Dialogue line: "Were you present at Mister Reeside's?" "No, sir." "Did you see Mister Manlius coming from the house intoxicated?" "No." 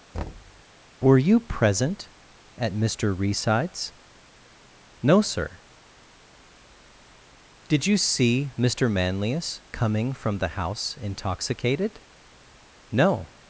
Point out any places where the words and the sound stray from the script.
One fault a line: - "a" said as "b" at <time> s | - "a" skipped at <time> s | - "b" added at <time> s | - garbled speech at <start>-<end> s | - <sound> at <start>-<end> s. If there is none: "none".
- thud at 0.1-0.6 s